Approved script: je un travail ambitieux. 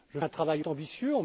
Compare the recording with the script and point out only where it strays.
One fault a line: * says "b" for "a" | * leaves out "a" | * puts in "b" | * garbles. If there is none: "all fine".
all fine